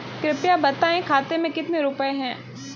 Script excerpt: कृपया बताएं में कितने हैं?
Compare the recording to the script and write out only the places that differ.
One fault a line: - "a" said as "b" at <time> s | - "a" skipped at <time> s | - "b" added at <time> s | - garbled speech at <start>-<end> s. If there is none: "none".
- "खाते" added at 1.0 s
- "रुपए" added at 1.8 s